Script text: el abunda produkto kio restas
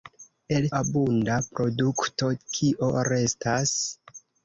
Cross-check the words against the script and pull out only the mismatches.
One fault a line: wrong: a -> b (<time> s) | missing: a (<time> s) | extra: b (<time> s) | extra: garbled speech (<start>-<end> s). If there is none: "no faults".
no faults